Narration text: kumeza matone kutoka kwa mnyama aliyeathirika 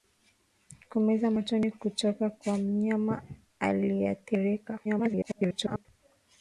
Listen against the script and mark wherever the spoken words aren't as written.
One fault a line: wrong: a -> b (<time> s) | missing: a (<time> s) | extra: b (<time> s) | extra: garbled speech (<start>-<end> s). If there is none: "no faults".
extra: garbled speech (4.8-5.9 s)